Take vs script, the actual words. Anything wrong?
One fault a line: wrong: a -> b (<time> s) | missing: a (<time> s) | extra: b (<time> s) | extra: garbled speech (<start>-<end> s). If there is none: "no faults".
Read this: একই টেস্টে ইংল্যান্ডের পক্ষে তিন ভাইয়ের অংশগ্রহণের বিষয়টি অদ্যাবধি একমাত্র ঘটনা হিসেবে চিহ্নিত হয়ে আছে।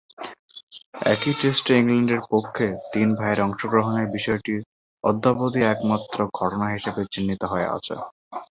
no faults